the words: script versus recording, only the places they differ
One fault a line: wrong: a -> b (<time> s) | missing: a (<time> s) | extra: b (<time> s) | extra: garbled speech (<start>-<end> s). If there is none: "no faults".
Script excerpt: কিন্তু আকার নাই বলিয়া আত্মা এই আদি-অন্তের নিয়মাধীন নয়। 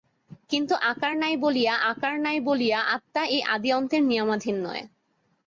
extra: আকার নাই বলিয়া (1.9 s)